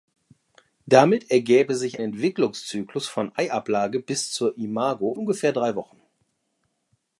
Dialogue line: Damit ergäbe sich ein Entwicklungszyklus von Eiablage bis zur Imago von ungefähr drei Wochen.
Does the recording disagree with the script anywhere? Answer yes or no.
yes